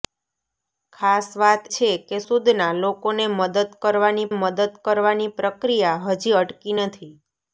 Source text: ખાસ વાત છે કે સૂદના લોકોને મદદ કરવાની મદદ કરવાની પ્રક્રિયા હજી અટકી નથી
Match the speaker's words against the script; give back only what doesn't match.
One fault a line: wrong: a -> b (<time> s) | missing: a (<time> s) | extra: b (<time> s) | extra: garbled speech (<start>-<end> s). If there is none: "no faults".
no faults